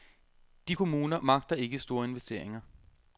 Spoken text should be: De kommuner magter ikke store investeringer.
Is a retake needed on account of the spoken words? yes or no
no